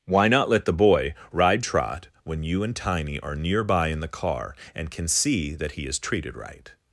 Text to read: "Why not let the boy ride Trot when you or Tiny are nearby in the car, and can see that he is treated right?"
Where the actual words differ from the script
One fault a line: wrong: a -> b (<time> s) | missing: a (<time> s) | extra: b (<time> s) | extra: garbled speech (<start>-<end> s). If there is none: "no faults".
wrong: or -> and (2.6 s)